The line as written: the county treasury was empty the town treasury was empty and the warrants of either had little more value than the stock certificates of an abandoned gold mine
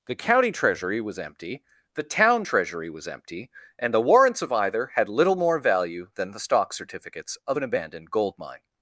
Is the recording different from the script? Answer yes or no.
no